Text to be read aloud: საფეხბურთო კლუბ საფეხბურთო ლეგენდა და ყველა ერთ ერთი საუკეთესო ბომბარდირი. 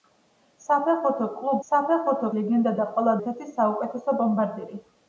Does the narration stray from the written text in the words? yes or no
no